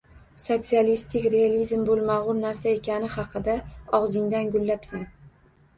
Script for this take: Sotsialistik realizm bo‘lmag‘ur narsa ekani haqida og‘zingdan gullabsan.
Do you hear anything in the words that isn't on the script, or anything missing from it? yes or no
no